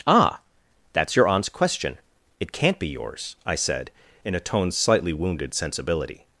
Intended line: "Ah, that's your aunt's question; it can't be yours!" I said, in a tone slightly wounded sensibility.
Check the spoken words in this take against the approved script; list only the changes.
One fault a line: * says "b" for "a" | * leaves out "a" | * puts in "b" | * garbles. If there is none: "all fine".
all fine